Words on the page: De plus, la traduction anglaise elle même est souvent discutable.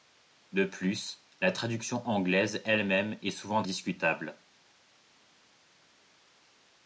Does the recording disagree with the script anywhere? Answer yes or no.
no